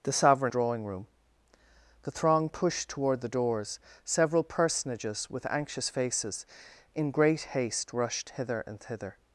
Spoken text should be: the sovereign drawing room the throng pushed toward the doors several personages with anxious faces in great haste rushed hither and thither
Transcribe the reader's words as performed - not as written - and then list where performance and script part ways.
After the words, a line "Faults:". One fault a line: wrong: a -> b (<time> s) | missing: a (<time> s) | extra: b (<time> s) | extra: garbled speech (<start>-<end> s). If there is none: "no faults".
the sovereign drawing room the throng pushed toward the doors several personages with anxious faces in great haste rushed hither and thither
Faults:
no faults